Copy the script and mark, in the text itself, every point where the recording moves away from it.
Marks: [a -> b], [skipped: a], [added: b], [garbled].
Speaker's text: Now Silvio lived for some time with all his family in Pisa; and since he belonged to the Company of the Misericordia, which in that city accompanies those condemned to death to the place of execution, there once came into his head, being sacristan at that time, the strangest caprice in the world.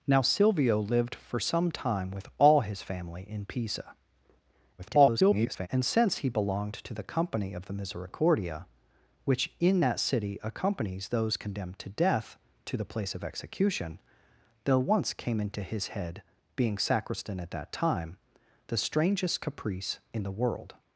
Now Silvio lived for some time with all his family in Pisa; [garbled] and since he belonged to the Company of the Misericordia, which in that city accompanies those condemned to death to the place of execution, there once came into his head, being sacristan at that time, the strangest caprice in the world.